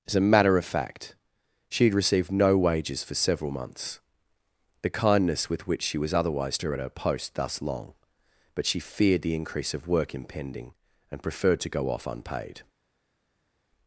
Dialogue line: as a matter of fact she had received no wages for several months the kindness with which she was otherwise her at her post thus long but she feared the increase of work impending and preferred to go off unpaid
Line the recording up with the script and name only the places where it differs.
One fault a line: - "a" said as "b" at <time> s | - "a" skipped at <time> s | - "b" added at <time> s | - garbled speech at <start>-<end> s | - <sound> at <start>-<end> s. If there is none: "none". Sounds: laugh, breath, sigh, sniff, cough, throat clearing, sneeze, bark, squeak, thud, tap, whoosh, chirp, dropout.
none